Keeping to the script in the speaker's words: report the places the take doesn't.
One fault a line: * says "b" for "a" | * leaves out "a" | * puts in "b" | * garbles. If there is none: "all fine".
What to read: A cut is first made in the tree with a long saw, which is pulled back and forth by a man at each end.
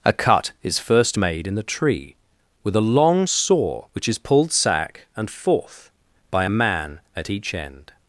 * says "sack" for "back"